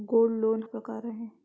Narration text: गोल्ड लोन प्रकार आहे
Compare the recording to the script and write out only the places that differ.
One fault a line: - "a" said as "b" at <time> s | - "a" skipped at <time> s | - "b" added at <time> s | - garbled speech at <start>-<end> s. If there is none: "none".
none